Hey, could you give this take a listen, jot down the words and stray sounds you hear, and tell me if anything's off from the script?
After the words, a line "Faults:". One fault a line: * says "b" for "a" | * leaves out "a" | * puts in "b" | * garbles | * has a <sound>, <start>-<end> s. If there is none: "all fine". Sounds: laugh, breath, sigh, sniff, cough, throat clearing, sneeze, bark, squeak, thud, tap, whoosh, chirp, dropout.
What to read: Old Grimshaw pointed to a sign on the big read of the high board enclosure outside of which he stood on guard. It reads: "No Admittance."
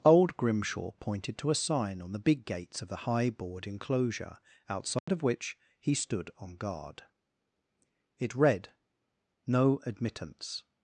Old Grimshaw pointed to a sign on the big gates of the high board enclosure outside of which he stood on guard. It read: "No Admittance."
Faults:
* says "gates" for "read"
* has a dropout, 5.0-5.1 s
* says "read" for "reads"